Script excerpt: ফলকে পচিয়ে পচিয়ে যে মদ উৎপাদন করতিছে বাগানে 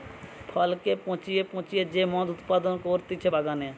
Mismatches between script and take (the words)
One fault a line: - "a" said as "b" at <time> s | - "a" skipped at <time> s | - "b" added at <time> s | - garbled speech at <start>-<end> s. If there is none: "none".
none